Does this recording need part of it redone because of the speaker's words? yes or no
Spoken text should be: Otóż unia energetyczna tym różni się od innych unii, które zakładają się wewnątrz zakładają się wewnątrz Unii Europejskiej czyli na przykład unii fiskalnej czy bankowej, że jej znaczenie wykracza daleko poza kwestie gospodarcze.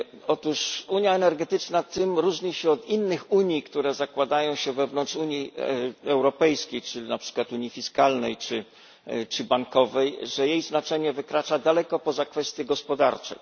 yes